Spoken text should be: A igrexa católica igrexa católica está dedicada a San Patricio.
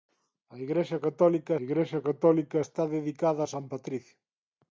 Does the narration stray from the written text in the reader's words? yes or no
no